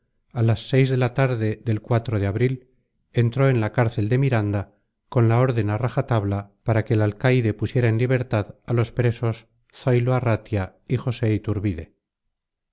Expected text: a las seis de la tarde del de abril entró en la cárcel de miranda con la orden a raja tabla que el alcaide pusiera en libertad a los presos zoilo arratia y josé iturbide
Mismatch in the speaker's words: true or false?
true